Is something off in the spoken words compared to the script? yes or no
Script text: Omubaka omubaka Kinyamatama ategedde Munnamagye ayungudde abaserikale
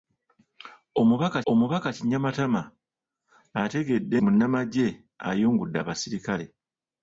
no